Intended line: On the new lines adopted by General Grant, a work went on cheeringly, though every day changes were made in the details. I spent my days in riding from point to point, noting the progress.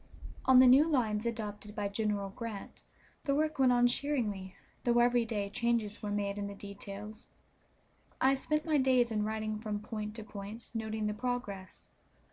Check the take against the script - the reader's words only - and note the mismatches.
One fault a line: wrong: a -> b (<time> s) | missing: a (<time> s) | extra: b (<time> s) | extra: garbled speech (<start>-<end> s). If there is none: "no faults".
wrong: a -> the (3.2 s)